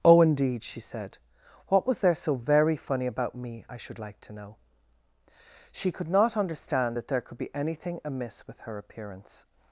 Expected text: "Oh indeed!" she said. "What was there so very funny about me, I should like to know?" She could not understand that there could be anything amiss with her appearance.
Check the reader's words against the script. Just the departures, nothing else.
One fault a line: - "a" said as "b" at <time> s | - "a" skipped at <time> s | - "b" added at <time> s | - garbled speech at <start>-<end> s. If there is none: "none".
none